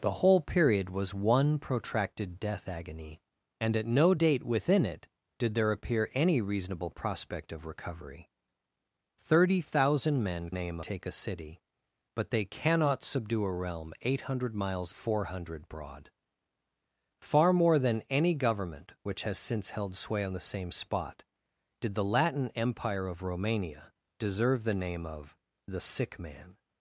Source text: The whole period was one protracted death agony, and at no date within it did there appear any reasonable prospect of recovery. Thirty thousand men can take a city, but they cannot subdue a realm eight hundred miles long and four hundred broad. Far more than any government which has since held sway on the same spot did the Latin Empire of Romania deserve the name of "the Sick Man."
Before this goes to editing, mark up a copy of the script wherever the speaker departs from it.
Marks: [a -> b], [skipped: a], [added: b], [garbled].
The whole period was one protracted death agony, and at no date within it did there appear any reasonable prospect of recovery. Thirty thousand men [can -> name] take a city, but they cannot subdue a realm eight hundred miles [skipped: long and] four hundred broad. Far more than any government which has since held sway on the same spot did the Latin Empire of Romania deserve the name of "the Sick Man."